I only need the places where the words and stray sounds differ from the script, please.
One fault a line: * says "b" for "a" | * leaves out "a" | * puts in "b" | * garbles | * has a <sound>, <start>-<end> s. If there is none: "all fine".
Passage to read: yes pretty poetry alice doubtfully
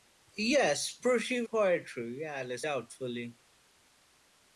all fine